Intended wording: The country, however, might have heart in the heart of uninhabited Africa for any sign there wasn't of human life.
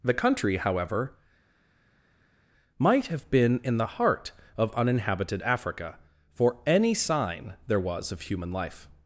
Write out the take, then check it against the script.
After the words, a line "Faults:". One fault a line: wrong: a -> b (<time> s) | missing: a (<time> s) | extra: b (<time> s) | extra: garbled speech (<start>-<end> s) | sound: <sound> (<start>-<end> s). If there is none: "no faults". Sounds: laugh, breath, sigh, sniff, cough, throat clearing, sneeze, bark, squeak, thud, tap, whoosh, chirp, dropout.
The country, however, might have been in the heart of uninhabited Africa for any sign there was of human life.
Faults:
wrong: heart -> been (3.3 s)
wrong: wasn't -> was (7.8 s)